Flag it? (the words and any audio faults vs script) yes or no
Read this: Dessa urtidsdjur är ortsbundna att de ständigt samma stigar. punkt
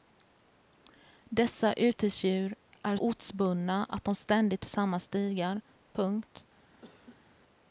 yes